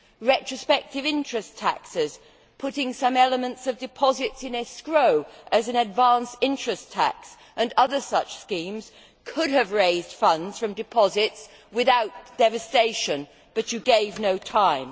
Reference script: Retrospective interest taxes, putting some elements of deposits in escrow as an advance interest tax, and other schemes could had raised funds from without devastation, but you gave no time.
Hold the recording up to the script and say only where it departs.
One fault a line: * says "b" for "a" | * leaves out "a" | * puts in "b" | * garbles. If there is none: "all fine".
* puts in "such"
* says "have" for "had"
* puts in "deposits"